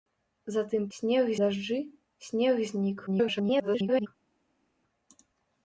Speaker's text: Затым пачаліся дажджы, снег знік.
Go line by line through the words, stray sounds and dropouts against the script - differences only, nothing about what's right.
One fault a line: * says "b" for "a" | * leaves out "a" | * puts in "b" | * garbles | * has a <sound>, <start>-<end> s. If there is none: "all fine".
* says "снег" for "пачаліся"
* garbles